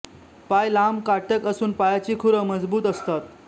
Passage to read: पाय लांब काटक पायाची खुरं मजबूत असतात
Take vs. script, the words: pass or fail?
fail